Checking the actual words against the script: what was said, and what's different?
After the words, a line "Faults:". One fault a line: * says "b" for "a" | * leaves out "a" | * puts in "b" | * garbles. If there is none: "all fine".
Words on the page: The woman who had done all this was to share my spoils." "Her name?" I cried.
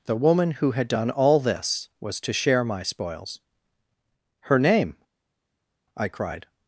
The woman who had done all this was to share my spoils." "Her name?" I cried.
Faults:
all fine